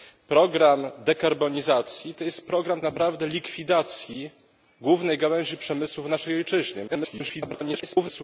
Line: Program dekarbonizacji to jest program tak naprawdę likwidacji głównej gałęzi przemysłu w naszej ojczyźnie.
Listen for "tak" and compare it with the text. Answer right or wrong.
wrong